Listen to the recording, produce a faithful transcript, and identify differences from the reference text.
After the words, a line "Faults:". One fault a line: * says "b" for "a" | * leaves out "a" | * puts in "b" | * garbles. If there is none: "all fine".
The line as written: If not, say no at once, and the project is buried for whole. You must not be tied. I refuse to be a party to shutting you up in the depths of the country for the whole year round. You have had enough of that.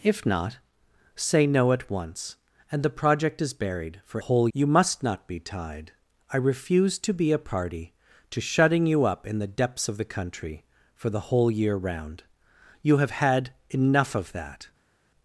If not, say no at once, and the project is buried for whole. You must not be tied. I refuse to be a party to shutting you up in the depths of the country for the whole year round. You have had enough of that.
Faults:
all fine